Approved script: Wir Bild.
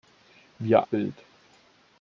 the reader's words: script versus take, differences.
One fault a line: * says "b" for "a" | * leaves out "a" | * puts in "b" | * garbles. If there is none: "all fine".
all fine